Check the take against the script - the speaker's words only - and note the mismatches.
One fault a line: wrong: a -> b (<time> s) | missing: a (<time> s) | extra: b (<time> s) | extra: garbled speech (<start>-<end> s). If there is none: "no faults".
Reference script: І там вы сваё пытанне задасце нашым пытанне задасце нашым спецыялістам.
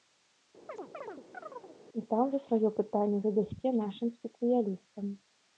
missing: пытанне задасце нашым (4.2 s)